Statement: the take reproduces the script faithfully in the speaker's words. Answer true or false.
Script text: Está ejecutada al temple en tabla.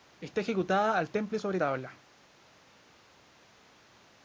false